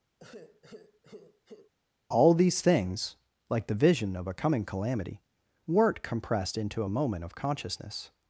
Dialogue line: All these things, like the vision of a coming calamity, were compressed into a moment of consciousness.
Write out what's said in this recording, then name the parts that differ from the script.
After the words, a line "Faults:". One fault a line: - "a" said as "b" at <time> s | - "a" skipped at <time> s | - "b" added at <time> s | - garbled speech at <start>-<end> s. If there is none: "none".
All these things, like the vision of a coming calamity, weren't compressed into a moment of consciousness.
Faults:
- "were" said as "weren't" at 5.7 s